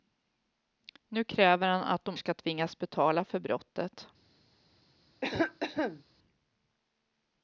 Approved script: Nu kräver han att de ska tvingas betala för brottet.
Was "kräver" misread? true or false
false